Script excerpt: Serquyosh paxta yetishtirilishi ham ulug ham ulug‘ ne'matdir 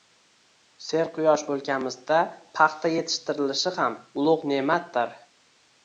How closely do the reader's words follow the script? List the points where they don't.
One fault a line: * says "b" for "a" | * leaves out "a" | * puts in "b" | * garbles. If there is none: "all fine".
* puts in "o‘lkamizda"
* leaves out "ham ulug"